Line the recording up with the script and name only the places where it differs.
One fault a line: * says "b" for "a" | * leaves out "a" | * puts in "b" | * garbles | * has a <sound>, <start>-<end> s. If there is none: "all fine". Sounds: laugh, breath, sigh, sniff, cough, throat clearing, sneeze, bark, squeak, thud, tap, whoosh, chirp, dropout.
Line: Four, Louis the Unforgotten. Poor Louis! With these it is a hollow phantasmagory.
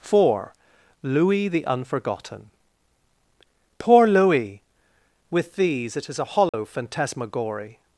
* has a dropout, 6.5-6.5 s